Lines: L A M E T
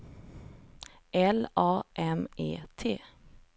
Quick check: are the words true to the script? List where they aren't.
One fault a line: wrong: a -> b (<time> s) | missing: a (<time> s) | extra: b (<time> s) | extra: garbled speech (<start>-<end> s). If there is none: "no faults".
no faults